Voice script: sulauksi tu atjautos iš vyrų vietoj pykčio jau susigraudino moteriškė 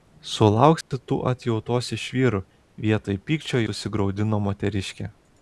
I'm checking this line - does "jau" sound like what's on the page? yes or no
no